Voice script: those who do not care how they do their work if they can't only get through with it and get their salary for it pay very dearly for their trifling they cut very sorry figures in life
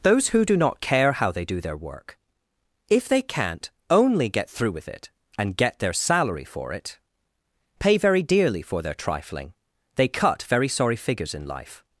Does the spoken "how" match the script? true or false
true